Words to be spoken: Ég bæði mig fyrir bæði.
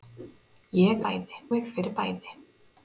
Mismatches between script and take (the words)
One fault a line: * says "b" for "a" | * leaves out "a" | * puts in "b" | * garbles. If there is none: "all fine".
all fine